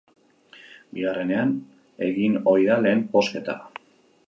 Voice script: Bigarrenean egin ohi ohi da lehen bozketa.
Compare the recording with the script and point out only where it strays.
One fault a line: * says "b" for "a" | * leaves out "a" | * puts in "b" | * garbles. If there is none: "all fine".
* leaves out "ohi"